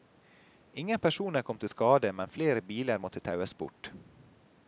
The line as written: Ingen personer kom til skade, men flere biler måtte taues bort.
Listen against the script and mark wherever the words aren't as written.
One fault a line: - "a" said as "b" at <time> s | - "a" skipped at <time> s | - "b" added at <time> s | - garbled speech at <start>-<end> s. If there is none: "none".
none